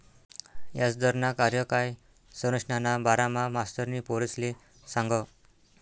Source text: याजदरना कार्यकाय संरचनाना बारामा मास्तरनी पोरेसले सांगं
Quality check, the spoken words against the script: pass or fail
pass